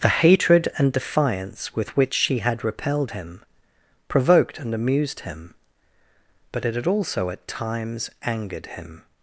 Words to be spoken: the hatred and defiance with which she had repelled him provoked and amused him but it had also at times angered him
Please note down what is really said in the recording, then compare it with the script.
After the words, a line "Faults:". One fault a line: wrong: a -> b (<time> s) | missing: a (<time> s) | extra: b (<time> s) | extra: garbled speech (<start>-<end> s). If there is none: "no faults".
the hatred and defiance with which she had repelled him provoked and amused him but it had also at times angered him
Faults:
no faults